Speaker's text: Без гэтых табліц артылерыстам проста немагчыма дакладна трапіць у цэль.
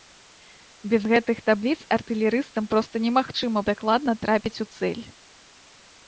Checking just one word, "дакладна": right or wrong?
right